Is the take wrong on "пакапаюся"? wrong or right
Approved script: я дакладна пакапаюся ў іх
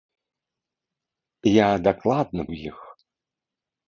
wrong